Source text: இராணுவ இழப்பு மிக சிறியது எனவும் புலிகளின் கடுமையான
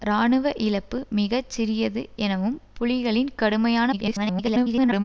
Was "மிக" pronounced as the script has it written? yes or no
yes